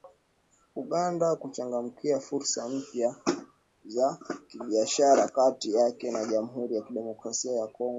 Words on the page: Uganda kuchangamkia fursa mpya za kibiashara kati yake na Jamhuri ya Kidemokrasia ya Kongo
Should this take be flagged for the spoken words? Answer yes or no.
no